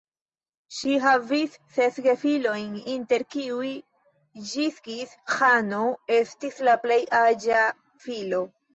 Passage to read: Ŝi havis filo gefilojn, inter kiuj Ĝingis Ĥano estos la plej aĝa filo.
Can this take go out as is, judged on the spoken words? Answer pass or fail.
fail